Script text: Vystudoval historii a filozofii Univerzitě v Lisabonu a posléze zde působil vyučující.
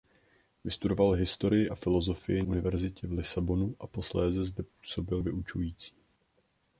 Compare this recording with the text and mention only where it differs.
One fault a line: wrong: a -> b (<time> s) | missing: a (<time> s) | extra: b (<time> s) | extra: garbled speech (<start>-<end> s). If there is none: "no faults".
no faults